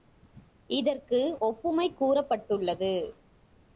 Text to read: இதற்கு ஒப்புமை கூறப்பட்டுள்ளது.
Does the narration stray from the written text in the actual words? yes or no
no